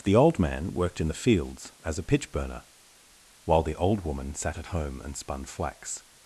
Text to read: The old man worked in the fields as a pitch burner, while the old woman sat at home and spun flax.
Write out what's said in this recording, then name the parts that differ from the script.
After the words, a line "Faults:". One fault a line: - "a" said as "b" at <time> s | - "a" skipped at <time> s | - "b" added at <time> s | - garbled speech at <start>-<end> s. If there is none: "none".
The old man worked in the fields as a pitch burner, while the old woman sat at home and spun flax.
Faults:
none